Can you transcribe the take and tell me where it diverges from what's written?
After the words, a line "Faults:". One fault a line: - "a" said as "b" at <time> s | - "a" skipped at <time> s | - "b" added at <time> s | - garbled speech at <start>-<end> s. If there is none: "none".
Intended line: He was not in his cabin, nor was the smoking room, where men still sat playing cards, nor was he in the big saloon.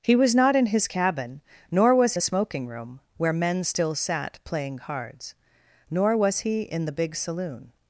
He was not in his cabin, nor was the smoking room, where men still sat playing cards, nor was he in the big saloon.
Faults:
none